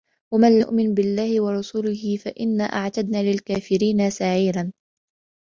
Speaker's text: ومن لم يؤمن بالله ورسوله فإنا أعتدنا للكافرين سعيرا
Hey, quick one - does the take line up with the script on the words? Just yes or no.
no